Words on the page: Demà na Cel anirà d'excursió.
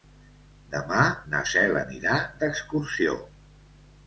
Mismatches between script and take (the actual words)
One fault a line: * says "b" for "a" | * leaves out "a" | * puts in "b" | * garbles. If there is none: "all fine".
all fine